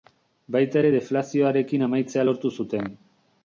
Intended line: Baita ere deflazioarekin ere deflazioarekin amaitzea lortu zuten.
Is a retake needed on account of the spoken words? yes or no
yes